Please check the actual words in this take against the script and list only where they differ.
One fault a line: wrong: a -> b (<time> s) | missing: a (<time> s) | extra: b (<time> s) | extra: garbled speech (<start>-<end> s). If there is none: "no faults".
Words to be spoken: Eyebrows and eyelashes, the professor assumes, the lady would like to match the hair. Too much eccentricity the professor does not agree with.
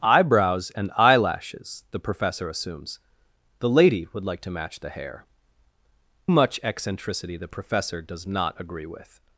missing: Too (5.2 s)